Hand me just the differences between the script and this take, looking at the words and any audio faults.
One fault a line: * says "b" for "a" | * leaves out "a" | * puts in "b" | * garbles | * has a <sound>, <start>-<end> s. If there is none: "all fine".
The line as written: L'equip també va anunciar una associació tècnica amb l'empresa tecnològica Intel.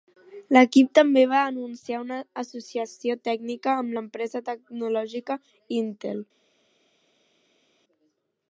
all fine